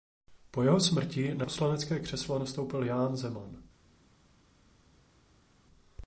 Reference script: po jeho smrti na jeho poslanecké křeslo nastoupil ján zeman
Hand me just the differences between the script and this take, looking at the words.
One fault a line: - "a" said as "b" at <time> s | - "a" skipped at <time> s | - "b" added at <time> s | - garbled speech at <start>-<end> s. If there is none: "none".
- "jeho" skipped at 1.5 s